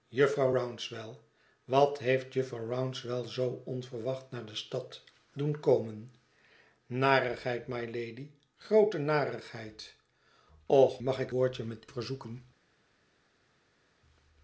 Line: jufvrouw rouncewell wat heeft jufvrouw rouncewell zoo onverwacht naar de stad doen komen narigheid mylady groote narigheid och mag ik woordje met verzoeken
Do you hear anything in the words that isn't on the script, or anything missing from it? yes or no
no